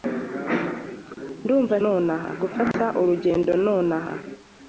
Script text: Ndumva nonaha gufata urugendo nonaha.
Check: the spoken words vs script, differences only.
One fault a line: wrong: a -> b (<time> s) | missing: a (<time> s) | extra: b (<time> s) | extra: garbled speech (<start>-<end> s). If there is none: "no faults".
no faults